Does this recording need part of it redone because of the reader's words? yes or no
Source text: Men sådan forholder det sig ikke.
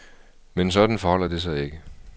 no